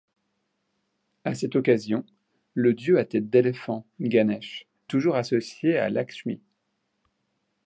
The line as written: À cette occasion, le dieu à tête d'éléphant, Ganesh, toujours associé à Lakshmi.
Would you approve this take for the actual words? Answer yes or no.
yes